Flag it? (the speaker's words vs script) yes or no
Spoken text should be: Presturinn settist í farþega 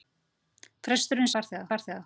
yes